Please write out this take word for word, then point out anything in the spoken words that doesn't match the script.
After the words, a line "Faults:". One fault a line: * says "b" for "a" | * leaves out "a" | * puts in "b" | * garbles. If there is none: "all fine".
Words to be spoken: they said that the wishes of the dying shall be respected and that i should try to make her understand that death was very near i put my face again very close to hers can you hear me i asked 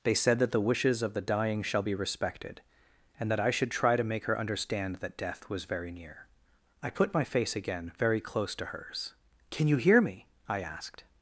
they said that the wishes of the dying shall be respected and that i should try to make her understand that death was very near i put my face again very close to hers can you hear me i asked
Faults:
all fine